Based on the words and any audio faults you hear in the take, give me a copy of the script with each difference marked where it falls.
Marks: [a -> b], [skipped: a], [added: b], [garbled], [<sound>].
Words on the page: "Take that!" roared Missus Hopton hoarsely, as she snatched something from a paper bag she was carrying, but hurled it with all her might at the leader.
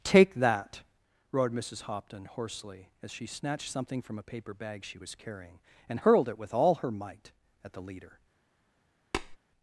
"Take that!" roared Missus Hopton hoarsely, as she snatched something from a paper bag she was carrying, [but -> and] hurled it with all her might at the leader. [tap]